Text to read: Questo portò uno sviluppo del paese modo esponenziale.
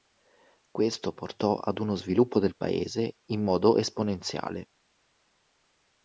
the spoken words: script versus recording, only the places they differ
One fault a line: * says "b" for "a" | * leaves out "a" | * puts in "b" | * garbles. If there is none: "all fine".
* puts in "ad"
* puts in "in"